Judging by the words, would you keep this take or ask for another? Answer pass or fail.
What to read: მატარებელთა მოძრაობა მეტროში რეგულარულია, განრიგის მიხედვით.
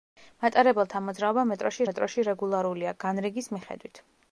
fail